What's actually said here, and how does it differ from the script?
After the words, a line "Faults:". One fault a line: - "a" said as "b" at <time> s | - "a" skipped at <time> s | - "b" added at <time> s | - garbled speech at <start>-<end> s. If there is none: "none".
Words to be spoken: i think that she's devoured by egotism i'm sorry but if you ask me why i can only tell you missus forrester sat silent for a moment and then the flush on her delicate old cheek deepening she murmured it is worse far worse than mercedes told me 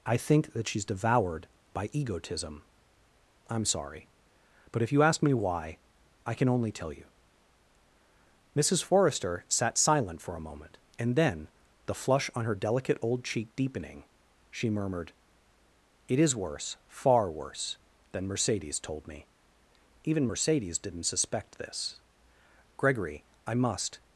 i think that she's devoured by egotism i'm sorry but if you ask me why i can only tell you missus forrester sat silent for a moment and then the flush on her delicate old cheek deepening she murmured it is worse far worse than mercedes told me even mercedes didn't suspect this gregory i must
Faults:
- "even mercedes didn't suspect this gregory i must" added at 20.0 s